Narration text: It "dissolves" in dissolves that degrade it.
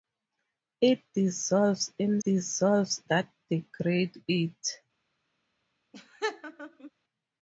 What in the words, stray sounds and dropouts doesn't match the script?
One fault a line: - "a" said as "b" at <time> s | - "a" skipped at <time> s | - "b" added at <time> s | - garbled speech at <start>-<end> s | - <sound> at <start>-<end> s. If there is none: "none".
- laugh at 5.9-6.9 s